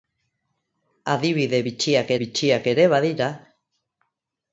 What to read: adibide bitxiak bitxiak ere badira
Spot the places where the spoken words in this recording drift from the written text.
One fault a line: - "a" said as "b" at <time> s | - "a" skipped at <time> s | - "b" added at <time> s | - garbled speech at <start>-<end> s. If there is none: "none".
none